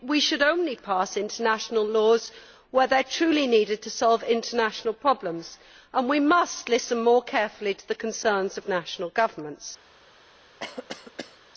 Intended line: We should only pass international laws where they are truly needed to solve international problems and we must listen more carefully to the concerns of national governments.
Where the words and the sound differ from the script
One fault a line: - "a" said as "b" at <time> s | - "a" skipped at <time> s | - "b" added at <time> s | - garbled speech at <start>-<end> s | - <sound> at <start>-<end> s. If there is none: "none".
- cough at 10.6-11.4 s